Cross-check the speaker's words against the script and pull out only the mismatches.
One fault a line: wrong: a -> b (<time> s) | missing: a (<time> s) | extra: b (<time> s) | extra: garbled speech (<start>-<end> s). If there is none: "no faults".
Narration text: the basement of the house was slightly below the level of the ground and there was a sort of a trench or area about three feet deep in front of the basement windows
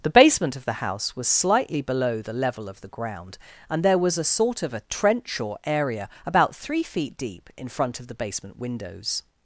no faults